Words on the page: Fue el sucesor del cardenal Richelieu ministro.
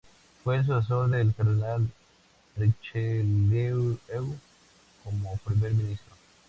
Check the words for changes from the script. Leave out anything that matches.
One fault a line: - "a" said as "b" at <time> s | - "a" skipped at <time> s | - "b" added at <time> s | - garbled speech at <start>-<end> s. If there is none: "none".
- "como primer" added at 5.0 s